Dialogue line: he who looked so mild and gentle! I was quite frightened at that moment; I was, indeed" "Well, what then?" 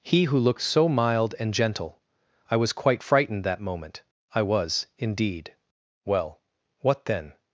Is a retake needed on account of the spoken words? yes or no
yes